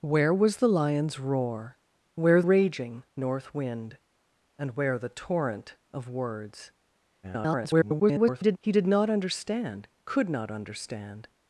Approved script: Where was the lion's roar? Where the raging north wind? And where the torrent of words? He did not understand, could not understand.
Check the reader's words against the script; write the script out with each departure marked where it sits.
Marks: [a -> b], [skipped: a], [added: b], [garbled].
Where was the lion's roar? Where [skipped: the] raging north wind? And where the torrent of words? [garbled] He did not understand, could not understand.